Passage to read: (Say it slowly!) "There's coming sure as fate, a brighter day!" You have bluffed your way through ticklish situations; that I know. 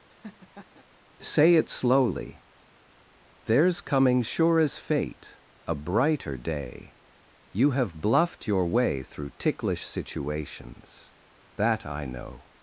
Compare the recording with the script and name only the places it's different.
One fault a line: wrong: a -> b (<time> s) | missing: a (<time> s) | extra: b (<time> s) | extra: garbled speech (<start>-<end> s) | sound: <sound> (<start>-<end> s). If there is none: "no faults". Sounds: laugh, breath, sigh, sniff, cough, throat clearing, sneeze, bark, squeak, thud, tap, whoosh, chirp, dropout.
sound: laugh (0.1-0.8 s)